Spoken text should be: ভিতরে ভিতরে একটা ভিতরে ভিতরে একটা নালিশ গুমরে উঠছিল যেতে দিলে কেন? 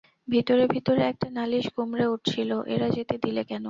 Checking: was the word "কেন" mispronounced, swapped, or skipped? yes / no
no